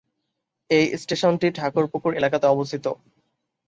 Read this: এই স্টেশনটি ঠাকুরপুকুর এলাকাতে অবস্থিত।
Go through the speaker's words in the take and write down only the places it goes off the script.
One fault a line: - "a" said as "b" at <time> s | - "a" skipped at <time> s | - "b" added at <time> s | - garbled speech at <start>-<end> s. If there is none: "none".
none